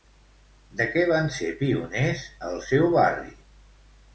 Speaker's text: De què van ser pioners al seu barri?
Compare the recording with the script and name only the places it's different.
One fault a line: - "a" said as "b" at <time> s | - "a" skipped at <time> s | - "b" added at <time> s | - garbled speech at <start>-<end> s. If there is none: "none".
none